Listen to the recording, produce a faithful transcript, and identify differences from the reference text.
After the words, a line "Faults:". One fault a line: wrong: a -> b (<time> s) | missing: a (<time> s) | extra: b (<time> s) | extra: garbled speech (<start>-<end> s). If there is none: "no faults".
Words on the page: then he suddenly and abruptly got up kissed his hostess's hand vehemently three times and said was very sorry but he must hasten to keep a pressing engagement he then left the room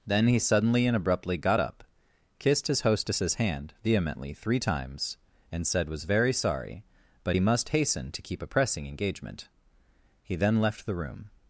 then he suddenly and abruptly got up kissed his hostess's hand vehemently three times and said was very sorry but he must hasten to keep a pressing engagement he then left the room
Faults:
no faults